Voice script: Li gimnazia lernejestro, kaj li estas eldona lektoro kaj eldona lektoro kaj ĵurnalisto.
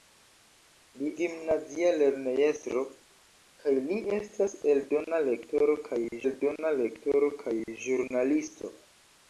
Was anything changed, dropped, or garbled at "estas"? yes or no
no